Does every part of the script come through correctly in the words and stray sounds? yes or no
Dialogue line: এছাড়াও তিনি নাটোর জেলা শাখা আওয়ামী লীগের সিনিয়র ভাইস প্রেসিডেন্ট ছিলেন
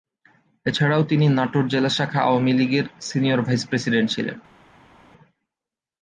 yes